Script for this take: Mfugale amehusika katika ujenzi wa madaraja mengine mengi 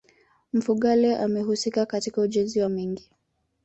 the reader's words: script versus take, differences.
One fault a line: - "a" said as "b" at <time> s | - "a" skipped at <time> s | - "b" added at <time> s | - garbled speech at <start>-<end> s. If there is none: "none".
- "madaraja mengine" skipped at 2.7 s